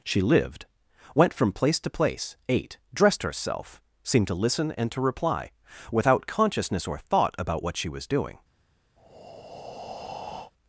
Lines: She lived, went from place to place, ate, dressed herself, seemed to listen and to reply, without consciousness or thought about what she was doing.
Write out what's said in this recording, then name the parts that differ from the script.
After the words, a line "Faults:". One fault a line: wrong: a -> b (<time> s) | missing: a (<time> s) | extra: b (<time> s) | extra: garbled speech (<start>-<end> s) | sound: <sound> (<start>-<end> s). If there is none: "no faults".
She lived, went from place to place, ate, dressed herself, seemed to listen and to reply, without consciousness or thought about what she was doing.
Faults:
sound: breath (9.0-10.5 s)